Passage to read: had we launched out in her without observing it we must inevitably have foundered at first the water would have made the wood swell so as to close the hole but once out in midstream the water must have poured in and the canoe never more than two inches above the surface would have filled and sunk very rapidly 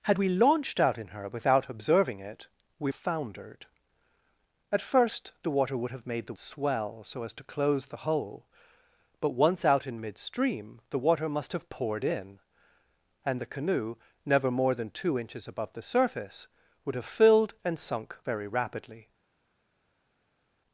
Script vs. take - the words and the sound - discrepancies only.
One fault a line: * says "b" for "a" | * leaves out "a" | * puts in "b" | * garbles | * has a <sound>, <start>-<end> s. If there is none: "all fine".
* leaves out "must inevitably have"
* leaves out "wood"